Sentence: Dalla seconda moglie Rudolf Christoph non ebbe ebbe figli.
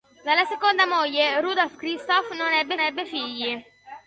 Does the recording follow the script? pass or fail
pass